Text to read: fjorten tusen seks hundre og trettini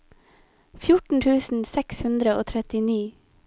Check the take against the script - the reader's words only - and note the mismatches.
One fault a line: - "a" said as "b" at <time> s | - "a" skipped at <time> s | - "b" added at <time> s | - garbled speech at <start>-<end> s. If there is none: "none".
none